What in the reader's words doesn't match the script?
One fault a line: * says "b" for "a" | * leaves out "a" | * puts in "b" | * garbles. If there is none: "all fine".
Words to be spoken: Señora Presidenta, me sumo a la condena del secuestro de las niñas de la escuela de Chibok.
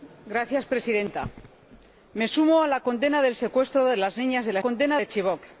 * says "condena" for "escuela"